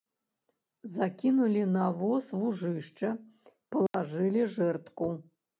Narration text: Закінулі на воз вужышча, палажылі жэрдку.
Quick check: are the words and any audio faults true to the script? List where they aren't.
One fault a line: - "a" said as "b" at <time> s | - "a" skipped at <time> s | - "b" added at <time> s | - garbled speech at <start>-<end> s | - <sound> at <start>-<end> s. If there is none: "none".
- dropout at 3.9-3.9 s